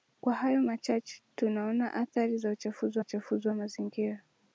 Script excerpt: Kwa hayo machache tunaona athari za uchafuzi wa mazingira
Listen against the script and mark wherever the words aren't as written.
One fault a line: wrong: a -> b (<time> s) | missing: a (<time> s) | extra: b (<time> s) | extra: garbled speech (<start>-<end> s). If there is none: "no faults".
extra: uchafuzi (3.0 s)